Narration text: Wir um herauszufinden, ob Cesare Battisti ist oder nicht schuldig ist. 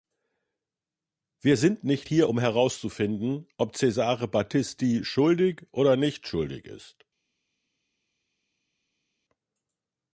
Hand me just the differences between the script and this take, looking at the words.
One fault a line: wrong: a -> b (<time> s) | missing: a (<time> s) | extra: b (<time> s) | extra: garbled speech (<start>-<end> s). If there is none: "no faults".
extra: sind nicht hier (1.6 s)
wrong: ist -> schuldig (5.0 s)